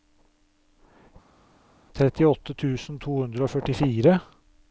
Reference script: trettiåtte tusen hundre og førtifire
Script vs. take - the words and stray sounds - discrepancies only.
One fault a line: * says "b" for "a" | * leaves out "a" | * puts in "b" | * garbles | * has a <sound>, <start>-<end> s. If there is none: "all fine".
* puts in "to"